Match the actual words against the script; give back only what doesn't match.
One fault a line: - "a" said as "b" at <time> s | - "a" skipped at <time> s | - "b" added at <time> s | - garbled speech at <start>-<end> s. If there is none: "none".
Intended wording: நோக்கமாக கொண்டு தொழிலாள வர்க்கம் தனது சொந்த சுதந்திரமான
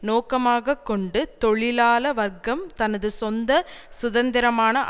none